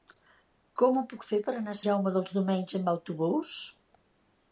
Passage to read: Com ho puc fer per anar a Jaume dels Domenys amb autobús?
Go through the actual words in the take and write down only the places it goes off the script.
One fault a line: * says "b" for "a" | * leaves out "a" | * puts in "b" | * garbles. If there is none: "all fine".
all fine